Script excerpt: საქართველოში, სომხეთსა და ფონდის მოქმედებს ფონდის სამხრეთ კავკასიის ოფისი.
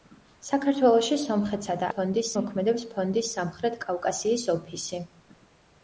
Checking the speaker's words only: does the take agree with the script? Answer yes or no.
yes